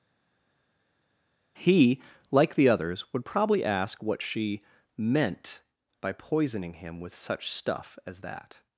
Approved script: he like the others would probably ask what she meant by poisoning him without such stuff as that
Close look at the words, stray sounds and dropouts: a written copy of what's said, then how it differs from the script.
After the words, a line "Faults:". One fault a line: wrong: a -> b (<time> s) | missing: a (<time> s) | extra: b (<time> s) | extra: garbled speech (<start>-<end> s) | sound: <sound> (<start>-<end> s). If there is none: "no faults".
he like the others would probably ask what she meant by poisoning him with such stuff as that
Faults:
wrong: without -> with (7.0 s)